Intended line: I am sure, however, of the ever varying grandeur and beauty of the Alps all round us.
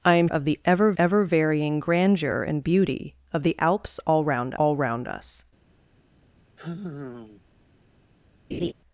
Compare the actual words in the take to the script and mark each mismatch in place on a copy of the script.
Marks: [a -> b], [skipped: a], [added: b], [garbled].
I am [skipped: sure, however,] of the ever [added: ever] varying grandeur and beauty of the Alps all round [added: all round] us.